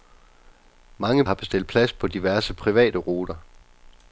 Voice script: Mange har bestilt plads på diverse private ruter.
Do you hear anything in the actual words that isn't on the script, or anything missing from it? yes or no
no